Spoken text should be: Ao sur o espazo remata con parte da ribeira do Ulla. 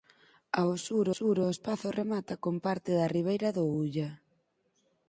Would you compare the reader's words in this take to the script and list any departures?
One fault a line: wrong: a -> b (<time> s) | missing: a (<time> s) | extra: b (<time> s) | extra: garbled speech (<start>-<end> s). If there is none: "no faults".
extra: sur (1.2 s)